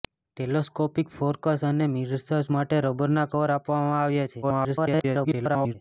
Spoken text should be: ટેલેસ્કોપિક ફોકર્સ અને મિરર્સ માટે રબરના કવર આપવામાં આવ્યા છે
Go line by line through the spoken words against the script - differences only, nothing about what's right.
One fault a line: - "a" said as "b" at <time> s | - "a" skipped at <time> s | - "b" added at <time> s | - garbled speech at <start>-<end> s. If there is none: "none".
- garbled speech at 4.4-5.8 s